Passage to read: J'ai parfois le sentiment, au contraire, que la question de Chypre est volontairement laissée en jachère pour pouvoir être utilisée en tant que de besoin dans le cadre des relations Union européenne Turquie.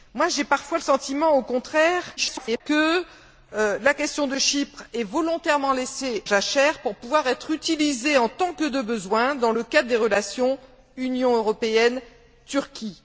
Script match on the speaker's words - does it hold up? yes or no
no